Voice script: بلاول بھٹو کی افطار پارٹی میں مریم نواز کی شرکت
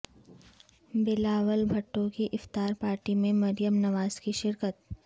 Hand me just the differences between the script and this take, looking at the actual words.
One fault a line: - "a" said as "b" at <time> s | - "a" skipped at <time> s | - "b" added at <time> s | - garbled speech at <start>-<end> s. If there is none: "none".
none